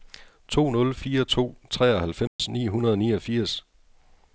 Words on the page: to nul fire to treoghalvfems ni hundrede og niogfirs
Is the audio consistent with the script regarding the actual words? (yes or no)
yes